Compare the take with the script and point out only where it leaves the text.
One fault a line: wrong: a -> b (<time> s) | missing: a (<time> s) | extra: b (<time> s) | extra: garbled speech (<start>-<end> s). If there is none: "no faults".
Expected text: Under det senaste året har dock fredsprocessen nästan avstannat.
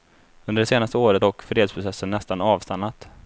missing: har (1.2 s)